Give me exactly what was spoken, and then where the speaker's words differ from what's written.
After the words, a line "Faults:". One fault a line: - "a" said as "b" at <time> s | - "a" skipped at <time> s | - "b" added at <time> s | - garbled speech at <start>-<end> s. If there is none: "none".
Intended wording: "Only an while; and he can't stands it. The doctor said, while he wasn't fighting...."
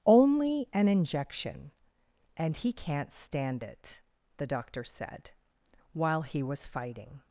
"Only an injection; and he can't stand it. The doctor said, while he was fighting...."
Faults:
- "while" said as "injection" at 0.9 s
- "stands" said as "stand" at 3.1 s
- "wasn't" said as "was" at 6.4 s